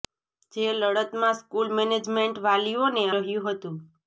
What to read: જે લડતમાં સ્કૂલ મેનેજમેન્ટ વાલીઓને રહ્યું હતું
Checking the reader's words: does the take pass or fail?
pass